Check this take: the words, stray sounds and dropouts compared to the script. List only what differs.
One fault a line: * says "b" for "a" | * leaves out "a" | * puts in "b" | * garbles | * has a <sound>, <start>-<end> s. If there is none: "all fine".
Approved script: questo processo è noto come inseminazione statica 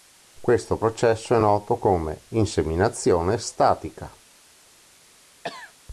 * has a cough, 5.4-5.7 s